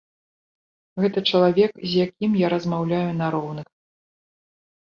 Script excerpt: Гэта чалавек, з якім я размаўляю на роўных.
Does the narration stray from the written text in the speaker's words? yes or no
no